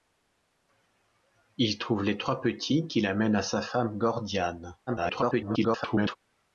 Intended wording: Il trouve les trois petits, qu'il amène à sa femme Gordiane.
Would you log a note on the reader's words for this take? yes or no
yes